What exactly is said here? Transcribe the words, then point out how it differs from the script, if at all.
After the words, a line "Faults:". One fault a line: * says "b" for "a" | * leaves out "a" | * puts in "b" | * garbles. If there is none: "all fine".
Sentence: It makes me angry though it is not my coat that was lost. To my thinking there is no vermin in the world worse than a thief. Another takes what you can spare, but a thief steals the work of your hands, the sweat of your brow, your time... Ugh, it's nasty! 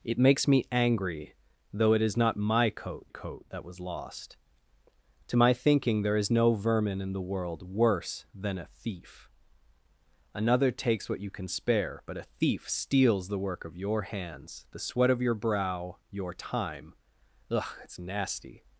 It makes me angry though it is not my coat coat that was lost. To my thinking there is no vermin in the world worse than a thief. Another takes what you can spare, but a thief steals the work of your hands, the sweat of your brow, your time... Ugh, it's nasty!
Faults:
* puts in "coat"